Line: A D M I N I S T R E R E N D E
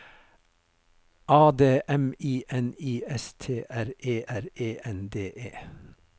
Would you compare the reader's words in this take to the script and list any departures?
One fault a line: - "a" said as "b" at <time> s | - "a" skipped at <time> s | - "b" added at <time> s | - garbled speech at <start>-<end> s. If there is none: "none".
none